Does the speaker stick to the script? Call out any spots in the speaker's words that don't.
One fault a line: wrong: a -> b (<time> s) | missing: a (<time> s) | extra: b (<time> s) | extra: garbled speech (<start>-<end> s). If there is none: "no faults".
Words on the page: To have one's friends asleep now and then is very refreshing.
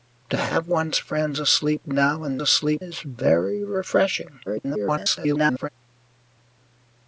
wrong: then -> asleep (2.4 s)
extra: garbled speech (4.5-5.7 s)